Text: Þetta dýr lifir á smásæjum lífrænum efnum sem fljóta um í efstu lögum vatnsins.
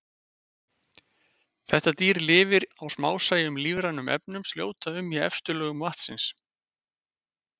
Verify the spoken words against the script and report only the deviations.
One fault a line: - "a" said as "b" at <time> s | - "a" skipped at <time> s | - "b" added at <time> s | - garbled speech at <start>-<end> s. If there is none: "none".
- "sem" skipped at 4.5 s